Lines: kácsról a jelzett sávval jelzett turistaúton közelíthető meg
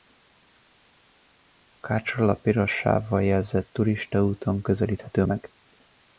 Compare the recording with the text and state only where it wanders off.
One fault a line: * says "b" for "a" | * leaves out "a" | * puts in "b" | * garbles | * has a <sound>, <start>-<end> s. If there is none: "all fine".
* says "piros" for "jelzett"